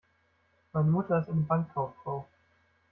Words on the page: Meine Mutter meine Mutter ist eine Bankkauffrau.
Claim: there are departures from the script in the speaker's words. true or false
true